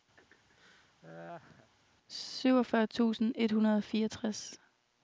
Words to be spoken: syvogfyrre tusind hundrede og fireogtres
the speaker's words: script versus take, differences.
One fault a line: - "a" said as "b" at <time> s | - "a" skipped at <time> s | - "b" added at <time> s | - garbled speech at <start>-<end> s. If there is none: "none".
- "et" added at 3.3 s